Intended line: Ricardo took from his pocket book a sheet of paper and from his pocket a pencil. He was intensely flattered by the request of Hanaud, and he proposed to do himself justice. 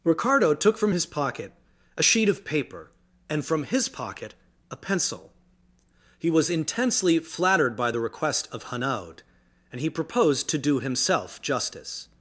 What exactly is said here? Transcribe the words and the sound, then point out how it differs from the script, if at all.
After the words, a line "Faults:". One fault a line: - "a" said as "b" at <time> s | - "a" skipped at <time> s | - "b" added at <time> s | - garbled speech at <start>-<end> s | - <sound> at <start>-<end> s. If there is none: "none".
Ricardo took from his pocket a sheet of paper and from his pocket a pencil. He was intensely flattered by the request of Hanaud, and he proposed to do himself justice.
Faults:
- "book" skipped at 1.5 s